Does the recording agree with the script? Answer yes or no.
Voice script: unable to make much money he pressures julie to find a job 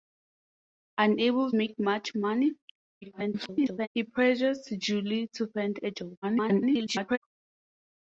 no